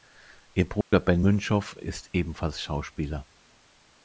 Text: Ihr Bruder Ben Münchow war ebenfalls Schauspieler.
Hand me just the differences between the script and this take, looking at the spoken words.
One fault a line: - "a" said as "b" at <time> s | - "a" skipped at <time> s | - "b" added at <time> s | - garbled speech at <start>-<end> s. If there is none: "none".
- "war" said as "ist" at 1.8 s